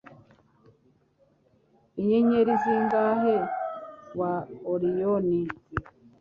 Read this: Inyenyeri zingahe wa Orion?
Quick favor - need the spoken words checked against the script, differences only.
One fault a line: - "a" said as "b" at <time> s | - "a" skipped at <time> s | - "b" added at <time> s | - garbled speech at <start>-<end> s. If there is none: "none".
none